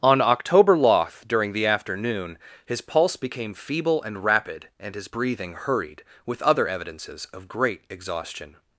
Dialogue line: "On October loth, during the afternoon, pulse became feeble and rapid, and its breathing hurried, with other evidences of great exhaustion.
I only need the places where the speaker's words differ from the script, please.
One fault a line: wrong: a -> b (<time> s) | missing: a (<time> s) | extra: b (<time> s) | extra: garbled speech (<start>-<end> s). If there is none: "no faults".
extra: his (2.6 s)
wrong: its -> his (5.0 s)